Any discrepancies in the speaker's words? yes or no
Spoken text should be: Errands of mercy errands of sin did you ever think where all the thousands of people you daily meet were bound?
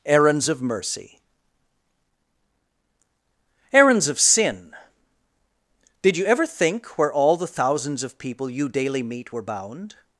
no